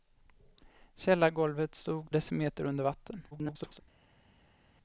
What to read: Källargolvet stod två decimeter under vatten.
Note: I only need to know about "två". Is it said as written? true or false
false